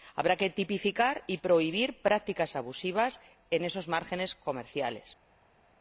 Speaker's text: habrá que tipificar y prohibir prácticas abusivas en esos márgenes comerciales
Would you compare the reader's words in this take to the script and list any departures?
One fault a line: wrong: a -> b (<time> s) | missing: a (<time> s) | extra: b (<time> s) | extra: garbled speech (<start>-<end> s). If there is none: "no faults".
no faults